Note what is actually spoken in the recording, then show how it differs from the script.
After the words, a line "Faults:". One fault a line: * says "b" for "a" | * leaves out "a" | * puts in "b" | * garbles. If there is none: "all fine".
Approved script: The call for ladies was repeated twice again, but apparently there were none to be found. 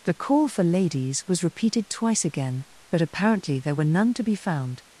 The call for ladies was repeated twice again, but apparently there were none to be found.
Faults:
all fine